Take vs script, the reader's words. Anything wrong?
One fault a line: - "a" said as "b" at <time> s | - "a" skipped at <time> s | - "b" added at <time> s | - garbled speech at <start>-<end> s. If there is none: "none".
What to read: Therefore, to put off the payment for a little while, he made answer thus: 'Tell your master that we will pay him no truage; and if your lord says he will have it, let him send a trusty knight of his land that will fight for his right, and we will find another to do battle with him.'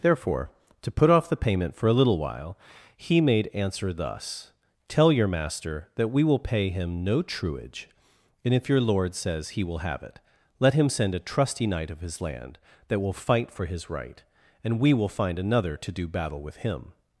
none